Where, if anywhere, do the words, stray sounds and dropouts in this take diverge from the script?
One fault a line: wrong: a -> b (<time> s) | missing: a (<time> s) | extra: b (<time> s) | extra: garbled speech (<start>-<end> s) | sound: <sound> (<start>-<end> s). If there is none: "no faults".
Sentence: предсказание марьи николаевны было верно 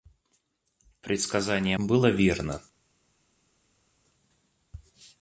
missing: марьи николаевны (1.8 s)